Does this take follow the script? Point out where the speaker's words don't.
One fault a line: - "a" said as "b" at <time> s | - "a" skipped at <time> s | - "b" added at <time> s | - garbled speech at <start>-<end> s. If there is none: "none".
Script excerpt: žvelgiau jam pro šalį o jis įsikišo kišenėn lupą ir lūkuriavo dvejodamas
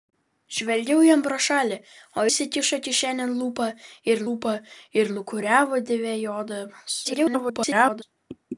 - "jis" skipped at 2.2 s
- "lupą ir" added at 4.3 s
- garbled speech at 7.0-8.0 s